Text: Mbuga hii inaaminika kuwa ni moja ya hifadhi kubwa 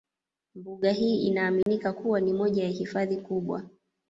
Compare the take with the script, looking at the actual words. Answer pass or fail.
pass